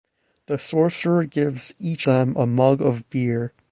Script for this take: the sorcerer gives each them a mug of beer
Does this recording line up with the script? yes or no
yes